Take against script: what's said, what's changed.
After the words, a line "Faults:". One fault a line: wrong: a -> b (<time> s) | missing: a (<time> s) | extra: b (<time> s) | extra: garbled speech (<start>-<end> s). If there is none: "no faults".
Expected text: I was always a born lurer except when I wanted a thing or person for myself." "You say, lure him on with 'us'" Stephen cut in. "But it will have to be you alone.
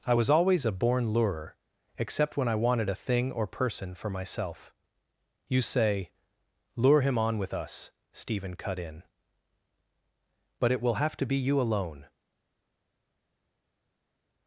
I was always a born lurer except when I wanted a thing or person for myself." "You say, lure him on with 'us'" Stephen cut in. "But it will have to be you alone.
Faults:
no faults